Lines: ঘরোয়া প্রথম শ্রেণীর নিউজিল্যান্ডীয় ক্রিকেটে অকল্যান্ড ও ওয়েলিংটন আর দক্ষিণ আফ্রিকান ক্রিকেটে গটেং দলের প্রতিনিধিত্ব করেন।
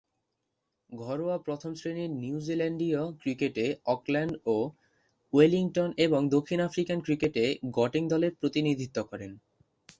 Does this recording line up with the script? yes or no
no